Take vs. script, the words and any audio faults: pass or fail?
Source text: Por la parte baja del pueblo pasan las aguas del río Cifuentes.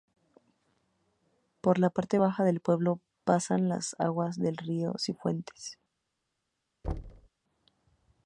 fail